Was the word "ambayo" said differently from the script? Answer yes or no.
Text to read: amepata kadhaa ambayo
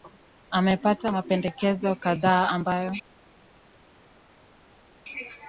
no